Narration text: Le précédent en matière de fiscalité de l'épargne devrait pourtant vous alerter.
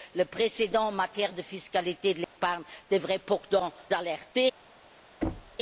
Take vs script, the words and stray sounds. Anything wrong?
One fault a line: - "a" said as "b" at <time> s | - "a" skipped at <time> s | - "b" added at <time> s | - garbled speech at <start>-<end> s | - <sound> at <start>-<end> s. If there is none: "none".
- dropout at 2.2-2.4 s
- "vous" skipped at 3.7 s
- thud at 5.2-5.6 s